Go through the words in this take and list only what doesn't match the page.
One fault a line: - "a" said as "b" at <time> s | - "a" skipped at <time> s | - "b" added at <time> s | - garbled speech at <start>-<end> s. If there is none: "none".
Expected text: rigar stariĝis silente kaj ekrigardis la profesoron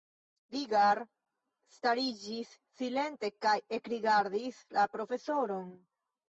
none